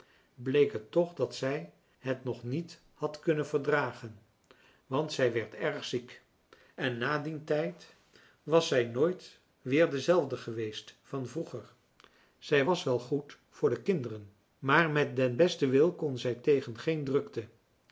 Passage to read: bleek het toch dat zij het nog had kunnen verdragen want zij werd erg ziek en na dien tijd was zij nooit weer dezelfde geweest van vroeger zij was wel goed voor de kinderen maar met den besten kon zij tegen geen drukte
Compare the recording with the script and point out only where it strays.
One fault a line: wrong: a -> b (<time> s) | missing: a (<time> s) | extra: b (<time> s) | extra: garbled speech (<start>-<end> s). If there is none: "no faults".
extra: niet (2.4 s)
extra: wil (15.7 s)